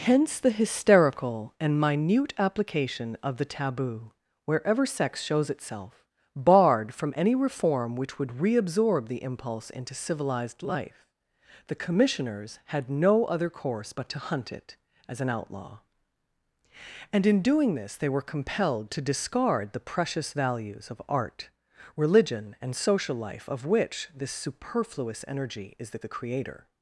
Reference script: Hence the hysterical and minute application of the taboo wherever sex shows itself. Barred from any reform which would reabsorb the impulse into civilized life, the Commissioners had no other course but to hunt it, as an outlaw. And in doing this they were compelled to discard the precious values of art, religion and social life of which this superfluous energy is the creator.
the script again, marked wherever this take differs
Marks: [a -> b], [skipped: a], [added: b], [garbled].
Hence the hysterical and minute application of the taboo wherever sex shows itself. Barred from any reform which would reabsorb the impulse into civilized life, the Commissioners had no other course but to hunt it, as an outlaw. And in doing this they were compelled to discard the precious values of art, religion and social life of which this superfluous energy is the [added: the] creator.